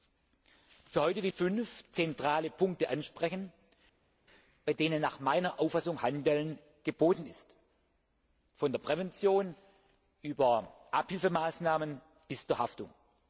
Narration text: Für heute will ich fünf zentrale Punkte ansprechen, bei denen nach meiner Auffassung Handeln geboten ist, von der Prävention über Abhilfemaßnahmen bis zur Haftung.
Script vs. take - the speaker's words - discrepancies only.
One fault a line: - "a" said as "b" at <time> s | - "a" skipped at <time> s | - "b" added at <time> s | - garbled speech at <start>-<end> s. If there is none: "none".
- "ich" skipped at 1.3 s